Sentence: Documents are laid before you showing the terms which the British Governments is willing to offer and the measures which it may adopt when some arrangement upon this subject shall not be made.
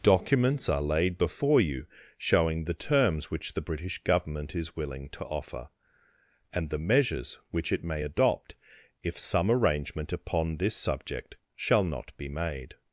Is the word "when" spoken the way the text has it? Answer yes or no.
no